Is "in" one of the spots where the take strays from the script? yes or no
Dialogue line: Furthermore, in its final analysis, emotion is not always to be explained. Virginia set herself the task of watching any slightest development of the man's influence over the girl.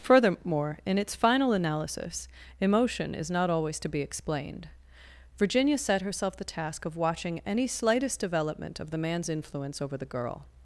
no